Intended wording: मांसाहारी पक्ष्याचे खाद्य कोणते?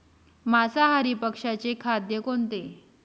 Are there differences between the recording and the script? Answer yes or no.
no